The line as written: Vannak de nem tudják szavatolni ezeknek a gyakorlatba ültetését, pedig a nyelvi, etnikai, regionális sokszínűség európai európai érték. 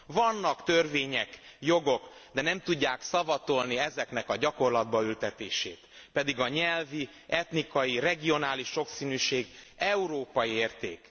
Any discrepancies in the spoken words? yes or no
yes